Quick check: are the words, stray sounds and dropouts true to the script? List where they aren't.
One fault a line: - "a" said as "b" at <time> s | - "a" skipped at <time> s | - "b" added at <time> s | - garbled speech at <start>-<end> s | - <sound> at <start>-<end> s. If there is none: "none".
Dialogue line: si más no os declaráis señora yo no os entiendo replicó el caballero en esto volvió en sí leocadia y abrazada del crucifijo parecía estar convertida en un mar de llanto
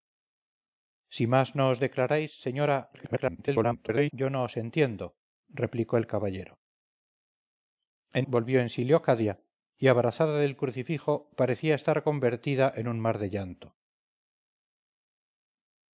- garbled speech at 2.9-4.1 s
- "esto" skipped at 8.3 s